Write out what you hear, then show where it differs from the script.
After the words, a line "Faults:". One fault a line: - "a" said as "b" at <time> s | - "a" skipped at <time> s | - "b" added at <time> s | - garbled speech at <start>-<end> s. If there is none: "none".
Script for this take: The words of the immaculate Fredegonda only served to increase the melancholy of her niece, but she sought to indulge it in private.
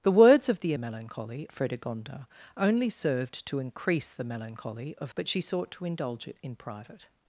The words of the melancholy Fredegonda only served to increase the melancholy of but she sought to indulge it in private.
Faults:
- "immaculate" said as "melancholy" at 0.8 s
- "her niece" skipped at 5.1 s